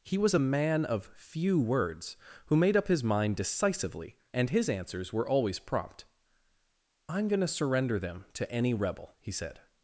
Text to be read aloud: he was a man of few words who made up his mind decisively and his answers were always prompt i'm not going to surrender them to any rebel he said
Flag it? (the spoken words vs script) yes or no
yes